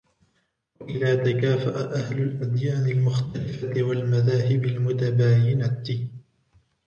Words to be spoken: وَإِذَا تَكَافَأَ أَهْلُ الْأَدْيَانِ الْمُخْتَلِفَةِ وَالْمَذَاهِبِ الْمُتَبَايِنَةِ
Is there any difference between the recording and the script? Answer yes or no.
no